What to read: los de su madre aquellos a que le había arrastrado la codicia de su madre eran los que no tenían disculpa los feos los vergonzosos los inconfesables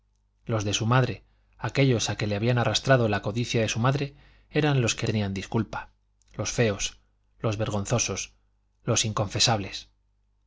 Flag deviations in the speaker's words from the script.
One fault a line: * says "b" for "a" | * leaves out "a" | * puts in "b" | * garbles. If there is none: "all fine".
* leaves out "no"